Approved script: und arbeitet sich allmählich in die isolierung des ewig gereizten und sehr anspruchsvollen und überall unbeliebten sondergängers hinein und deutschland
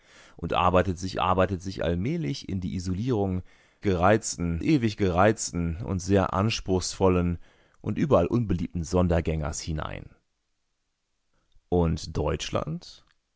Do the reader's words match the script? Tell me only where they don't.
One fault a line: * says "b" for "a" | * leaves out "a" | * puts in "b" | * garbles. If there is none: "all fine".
* puts in "arbeitet sich"
* says "gereizten" for "des"